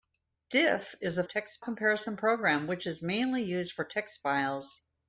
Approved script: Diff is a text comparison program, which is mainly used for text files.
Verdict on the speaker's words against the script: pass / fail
pass